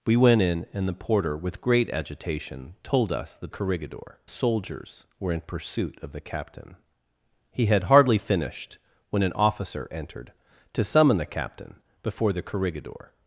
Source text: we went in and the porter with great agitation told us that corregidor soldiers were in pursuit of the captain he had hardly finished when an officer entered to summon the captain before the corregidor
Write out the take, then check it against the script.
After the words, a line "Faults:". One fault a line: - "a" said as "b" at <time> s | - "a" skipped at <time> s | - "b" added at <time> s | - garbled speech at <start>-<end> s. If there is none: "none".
we went in and the porter with great agitation told us that corregidor soldiers were in pursuit of the captain he had hardly finished when an officer entered to summon the captain before the corregidor
Faults:
none